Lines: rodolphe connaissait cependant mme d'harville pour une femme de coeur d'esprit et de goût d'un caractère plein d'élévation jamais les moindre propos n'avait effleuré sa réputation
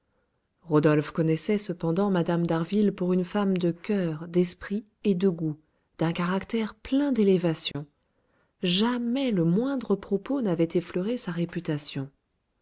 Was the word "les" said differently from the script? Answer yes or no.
yes